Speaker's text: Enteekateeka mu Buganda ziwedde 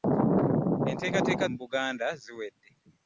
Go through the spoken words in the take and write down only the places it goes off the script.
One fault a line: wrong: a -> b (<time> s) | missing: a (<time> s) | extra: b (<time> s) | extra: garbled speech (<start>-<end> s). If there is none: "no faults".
no faults